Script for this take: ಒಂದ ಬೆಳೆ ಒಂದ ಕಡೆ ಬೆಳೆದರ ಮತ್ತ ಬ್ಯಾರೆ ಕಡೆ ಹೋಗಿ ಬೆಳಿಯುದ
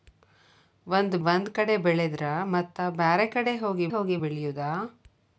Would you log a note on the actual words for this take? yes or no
yes